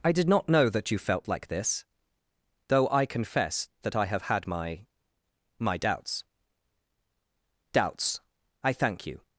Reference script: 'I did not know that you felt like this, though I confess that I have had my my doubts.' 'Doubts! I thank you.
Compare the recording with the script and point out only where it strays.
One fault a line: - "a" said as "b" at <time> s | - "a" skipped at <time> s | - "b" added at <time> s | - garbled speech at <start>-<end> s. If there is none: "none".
none